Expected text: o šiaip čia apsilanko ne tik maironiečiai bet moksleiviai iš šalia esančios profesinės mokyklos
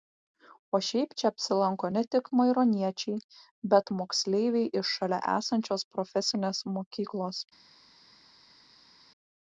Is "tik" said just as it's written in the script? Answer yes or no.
yes